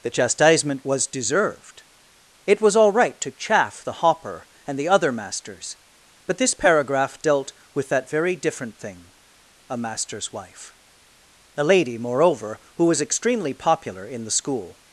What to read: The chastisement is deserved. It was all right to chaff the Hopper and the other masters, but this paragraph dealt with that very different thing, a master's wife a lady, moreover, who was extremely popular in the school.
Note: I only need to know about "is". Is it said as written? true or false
false